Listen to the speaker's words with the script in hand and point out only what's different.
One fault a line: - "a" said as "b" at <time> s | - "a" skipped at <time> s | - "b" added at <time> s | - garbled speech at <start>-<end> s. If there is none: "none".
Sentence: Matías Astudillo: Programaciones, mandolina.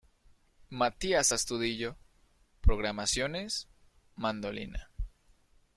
none